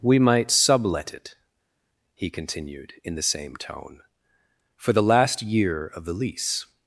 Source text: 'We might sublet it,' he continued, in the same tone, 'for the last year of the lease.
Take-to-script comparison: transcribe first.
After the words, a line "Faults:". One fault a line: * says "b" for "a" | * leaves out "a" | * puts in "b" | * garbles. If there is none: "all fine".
'We might sublet it,' he continued, in the same tone, 'for the last year of the lease.
Faults:
all fine